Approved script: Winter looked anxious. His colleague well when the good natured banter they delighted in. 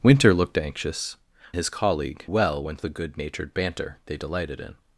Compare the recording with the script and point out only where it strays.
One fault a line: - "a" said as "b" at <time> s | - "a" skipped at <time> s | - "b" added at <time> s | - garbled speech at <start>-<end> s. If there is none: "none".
none